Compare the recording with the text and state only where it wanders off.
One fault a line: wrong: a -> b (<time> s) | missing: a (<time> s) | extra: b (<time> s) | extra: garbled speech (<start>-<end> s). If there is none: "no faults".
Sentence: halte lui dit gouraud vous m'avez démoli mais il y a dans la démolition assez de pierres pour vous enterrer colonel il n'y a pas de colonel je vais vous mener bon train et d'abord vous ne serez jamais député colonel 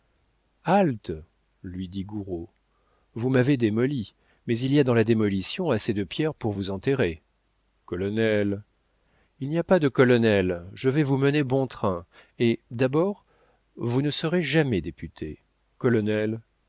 no faults